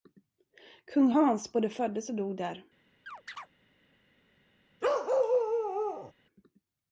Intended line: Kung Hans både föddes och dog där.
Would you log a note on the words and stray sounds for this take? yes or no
yes